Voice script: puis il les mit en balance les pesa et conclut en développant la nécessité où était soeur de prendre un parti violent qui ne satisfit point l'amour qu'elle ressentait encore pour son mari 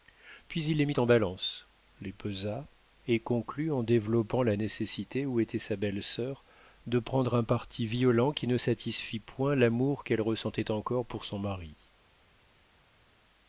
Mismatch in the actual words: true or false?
true